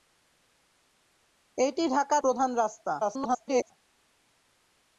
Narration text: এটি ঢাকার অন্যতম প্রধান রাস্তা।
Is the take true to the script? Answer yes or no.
no